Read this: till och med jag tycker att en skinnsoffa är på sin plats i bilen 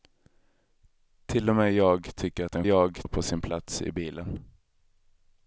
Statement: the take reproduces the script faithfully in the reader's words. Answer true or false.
false